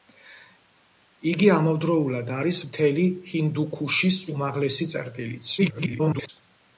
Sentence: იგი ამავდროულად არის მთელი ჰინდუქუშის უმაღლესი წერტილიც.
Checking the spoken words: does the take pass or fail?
fail